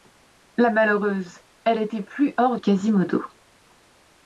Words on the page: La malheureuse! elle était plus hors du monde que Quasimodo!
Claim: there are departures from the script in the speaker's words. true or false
true